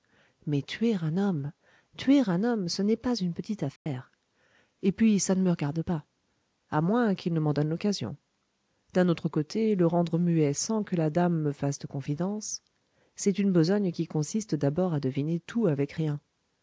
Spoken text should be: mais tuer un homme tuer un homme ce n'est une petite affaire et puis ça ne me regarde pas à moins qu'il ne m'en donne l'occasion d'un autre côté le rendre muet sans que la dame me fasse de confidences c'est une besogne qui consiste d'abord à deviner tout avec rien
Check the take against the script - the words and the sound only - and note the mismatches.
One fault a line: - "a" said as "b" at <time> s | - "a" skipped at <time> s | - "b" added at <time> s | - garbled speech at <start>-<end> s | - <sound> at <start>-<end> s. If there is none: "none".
- "pas" added at 3.0 s
- dropout at 3.8-3.9 s